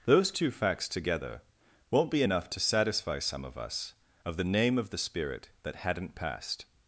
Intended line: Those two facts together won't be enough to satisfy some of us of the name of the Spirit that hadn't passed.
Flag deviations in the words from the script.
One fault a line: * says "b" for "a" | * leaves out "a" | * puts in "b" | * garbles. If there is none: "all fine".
all fine